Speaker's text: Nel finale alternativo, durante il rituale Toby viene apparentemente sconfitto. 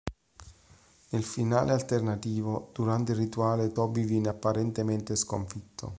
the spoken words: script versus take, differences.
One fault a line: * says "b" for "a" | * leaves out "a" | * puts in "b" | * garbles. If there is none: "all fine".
all fine